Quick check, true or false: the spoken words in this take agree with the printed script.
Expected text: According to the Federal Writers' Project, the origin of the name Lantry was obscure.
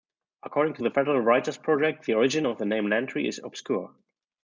false